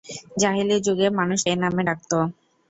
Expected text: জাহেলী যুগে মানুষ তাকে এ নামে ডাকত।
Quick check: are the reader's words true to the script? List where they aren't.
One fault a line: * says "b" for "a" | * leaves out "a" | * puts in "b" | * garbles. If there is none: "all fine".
* leaves out "তাকে"